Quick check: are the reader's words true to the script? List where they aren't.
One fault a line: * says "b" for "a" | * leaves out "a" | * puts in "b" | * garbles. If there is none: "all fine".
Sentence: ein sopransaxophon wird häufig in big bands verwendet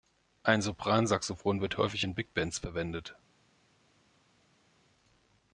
all fine